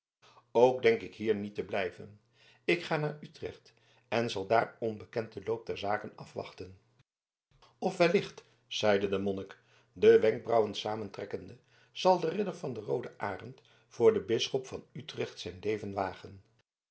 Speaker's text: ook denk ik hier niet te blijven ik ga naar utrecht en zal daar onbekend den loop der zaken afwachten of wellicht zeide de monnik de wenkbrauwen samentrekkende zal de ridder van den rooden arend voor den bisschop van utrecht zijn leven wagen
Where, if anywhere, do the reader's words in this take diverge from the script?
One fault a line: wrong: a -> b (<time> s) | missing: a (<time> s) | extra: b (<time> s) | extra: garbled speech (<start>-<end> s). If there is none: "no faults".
no faults